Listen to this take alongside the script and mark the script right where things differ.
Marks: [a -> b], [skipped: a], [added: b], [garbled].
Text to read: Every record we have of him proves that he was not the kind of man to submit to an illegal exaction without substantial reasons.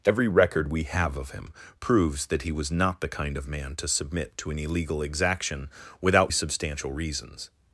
Every record we have of him proves that he was not the kind of man to submit to an illegal exaction without substantial reasons.